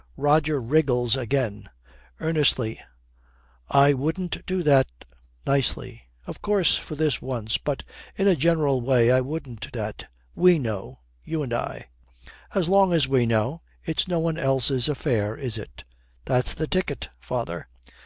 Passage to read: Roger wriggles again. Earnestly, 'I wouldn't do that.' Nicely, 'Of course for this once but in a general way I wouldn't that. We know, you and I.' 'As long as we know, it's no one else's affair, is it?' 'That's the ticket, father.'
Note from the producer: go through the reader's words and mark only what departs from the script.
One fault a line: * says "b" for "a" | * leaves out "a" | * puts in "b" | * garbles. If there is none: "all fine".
all fine